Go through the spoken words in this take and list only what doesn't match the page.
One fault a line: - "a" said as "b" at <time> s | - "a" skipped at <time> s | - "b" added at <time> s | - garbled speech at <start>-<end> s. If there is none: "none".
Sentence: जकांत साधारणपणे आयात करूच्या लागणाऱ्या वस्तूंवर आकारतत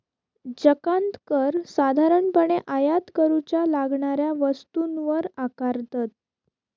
- "कर" added at 1.3 s